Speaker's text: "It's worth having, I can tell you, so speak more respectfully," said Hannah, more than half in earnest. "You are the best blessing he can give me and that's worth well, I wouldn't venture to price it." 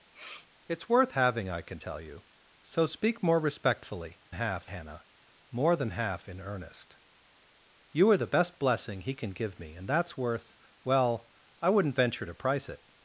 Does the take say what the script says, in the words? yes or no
no